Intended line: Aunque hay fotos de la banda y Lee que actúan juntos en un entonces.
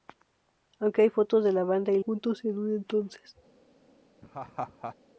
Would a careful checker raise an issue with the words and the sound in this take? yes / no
yes